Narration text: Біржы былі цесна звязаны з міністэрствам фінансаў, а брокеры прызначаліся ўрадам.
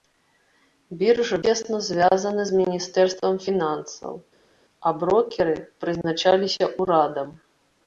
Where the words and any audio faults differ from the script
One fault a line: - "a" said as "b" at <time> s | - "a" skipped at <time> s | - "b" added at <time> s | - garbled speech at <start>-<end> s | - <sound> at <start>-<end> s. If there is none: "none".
- "былі" skipped at 1.4 s